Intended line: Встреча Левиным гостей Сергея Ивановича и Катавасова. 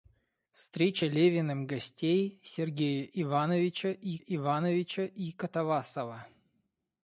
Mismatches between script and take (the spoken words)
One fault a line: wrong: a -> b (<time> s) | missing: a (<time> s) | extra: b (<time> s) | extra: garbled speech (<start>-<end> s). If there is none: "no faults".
extra: Ивановича и (4.2 s)